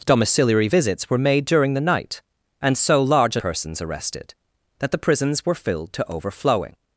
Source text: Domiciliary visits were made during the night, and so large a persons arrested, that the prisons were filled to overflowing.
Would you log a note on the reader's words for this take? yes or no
no